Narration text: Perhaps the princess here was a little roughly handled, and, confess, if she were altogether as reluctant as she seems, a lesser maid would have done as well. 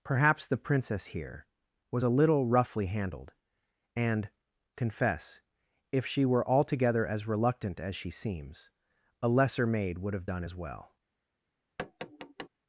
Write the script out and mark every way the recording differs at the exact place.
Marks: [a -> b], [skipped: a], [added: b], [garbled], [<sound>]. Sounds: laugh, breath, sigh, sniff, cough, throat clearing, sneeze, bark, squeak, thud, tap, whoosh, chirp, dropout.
Perhaps the princess here was a little roughly handled, and, confess, if she were altogether as reluctant as she seems, a lesser maid would have done as well. [tap]